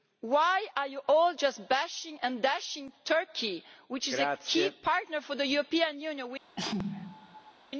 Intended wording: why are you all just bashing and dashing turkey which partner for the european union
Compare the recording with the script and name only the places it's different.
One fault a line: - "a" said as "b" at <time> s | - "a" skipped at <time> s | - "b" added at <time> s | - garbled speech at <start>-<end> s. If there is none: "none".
- "is a key" added at 4.1 s